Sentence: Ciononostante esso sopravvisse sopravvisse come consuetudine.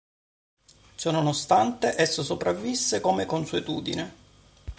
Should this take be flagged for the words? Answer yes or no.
yes